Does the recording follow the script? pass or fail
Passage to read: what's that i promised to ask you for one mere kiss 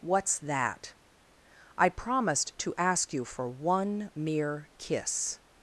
pass